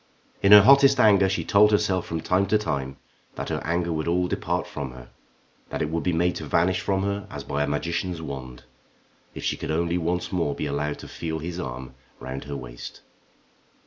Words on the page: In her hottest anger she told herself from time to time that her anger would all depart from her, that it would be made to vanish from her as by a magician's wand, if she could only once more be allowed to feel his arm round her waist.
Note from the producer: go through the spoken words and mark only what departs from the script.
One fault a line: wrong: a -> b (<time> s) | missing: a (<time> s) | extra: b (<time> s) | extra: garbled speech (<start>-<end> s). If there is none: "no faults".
no faults